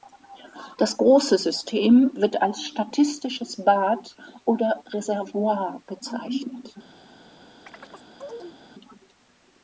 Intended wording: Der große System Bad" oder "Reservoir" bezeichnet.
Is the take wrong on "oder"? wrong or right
right